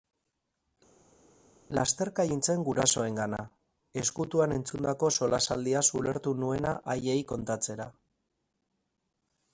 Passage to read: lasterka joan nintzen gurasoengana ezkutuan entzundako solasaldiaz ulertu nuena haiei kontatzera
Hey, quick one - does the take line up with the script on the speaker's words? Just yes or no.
no